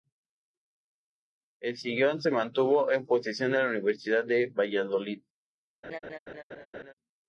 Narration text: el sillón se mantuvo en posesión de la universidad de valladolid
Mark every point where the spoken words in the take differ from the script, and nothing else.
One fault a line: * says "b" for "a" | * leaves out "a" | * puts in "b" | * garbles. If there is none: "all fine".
all fine